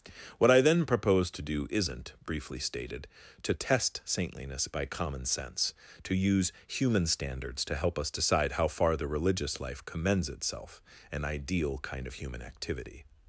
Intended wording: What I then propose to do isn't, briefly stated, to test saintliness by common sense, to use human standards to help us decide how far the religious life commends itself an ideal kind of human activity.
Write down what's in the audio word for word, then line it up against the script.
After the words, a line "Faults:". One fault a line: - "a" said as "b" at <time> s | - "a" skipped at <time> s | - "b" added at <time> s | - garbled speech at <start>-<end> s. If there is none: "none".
What I then propose to do isn't, briefly stated, to test saintliness by common sense, to use human standards to help us decide how far the religious life commends itself an ideal kind of human activity.
Faults:
none